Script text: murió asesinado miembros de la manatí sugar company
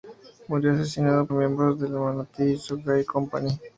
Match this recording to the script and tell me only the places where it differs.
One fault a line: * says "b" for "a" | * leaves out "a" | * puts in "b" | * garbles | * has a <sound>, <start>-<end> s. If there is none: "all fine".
all fine